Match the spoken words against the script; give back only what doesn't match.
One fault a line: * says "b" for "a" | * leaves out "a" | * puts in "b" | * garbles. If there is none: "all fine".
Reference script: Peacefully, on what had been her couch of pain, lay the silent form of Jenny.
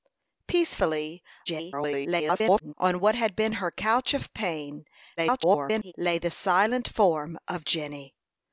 * garbles
* garbles